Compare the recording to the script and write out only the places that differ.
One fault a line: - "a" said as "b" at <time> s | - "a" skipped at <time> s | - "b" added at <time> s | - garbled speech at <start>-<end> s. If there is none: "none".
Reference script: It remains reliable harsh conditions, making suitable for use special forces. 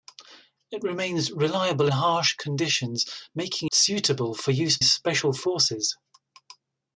none